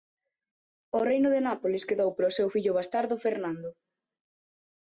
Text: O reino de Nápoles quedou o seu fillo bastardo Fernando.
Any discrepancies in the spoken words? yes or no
yes